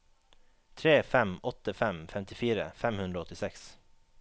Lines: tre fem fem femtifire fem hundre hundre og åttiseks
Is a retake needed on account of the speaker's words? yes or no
yes